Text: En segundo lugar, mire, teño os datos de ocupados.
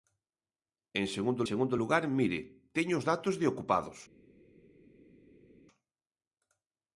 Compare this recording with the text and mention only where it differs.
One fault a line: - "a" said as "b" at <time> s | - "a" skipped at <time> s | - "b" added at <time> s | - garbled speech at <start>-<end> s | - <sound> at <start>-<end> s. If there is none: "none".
- "segundo" added at 1.5 s